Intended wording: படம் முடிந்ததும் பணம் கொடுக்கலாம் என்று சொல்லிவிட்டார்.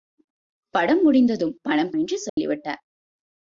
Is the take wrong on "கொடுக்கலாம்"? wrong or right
wrong